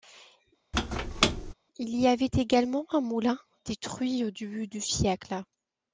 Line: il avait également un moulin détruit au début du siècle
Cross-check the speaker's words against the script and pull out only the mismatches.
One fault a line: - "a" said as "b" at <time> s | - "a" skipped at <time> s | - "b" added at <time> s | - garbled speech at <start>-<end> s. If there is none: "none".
- "y" added at 2.0 s